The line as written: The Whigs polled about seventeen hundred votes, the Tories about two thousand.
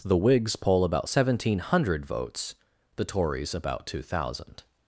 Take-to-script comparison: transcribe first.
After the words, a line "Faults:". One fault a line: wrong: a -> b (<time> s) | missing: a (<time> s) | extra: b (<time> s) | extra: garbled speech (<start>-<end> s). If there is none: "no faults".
The Whigs poll about seventeen hundred votes, the Tories about two thousand.
Faults:
wrong: polled -> poll (0.6 s)